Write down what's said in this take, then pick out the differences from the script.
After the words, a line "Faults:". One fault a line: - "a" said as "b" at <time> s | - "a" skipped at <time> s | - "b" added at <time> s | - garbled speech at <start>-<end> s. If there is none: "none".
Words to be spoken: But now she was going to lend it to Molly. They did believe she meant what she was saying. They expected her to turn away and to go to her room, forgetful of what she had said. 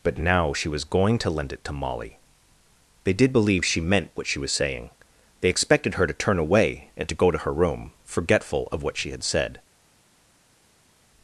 But now she was going to lend it to Molly. They did believe she meant what she was saying. They expected her to turn away and to go to her room, forgetful of what she had said.
Faults:
none